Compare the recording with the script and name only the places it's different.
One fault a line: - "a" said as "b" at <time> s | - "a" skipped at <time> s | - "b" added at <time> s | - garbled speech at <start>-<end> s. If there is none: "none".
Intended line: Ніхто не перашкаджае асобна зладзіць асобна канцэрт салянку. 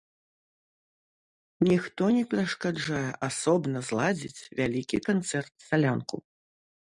- "асобна" said as "вялікі" at 4.6 s